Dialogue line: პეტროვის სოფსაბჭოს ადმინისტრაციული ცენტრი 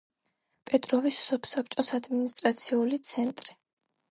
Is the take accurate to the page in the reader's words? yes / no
yes